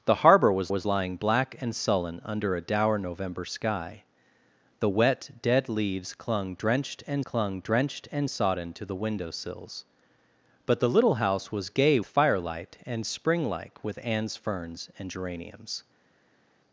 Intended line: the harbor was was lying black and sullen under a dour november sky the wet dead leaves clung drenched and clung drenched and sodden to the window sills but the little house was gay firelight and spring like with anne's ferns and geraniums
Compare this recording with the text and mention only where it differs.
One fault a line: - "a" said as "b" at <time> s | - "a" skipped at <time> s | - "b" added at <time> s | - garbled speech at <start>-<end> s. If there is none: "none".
none